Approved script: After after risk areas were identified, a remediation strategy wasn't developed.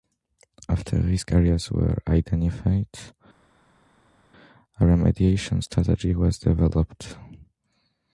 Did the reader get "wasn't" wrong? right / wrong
wrong